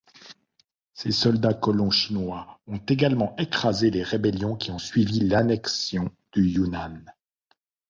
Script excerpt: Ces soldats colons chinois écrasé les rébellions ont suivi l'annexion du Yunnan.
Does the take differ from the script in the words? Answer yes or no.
yes